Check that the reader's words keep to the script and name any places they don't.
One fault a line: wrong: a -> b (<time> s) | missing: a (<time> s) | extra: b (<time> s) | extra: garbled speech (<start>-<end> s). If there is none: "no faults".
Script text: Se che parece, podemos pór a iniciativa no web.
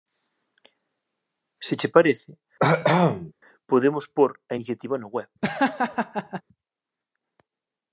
no faults